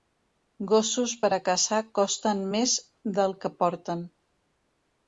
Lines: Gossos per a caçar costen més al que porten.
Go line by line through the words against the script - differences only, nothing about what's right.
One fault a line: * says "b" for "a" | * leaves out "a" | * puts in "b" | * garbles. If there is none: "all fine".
* says "del" for "al"